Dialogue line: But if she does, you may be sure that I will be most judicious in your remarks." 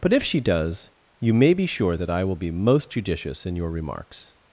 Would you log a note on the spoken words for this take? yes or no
no